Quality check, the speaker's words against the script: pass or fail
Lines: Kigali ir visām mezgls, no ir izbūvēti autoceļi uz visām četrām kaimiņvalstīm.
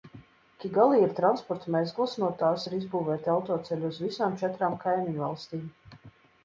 fail